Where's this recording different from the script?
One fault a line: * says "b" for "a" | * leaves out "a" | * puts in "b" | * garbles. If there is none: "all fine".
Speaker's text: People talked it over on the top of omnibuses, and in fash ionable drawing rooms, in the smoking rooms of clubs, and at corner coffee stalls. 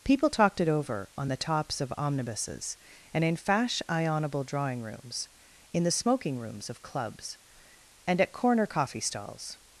* says "tops" for "top"